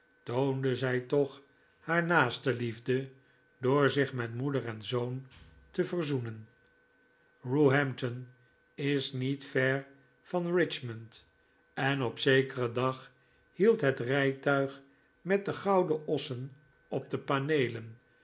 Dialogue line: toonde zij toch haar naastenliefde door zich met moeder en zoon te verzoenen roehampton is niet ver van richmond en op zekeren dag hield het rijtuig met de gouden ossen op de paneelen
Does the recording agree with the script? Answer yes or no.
yes